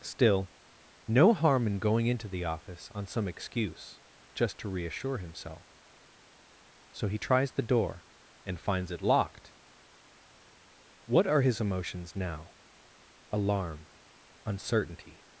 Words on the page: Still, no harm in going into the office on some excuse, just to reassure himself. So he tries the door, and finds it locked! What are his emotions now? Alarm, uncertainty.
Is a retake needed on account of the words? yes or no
no